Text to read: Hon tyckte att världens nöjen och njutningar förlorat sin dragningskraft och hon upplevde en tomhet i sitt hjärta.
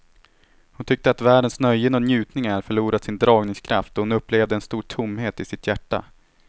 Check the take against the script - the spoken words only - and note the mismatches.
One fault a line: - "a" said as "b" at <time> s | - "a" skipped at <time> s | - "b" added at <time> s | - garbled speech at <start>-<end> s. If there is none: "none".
- "stor" added at 4.6 s